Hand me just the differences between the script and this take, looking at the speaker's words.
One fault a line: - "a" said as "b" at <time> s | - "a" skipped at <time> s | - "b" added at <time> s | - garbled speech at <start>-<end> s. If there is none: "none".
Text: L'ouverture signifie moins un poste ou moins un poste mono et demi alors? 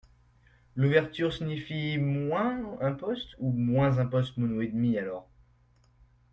none